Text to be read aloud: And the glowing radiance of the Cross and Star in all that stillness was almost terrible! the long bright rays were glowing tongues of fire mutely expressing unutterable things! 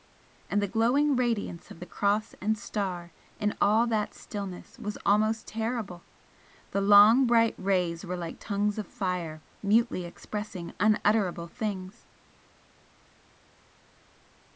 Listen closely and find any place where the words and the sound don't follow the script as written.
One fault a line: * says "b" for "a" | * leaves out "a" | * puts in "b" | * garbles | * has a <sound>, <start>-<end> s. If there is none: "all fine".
* says "like" for "glowing"